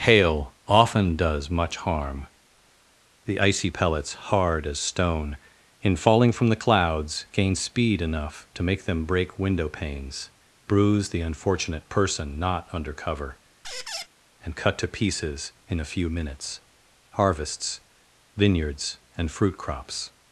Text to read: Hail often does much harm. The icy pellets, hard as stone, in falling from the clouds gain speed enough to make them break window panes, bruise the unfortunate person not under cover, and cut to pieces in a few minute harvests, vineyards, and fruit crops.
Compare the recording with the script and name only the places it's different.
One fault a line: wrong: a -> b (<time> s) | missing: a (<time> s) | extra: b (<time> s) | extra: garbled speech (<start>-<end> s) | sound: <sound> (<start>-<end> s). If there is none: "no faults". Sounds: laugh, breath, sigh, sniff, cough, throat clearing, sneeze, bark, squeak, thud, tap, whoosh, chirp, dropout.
sound: squeak (13.6-14.1 s)
wrong: minute -> minutes (16.1 s)